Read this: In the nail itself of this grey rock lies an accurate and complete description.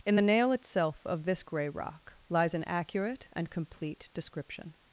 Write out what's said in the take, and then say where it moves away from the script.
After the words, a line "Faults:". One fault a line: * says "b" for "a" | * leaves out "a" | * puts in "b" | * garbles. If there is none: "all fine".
In the nail itself of this grey rock lies an accurate and complete description.
Faults:
all fine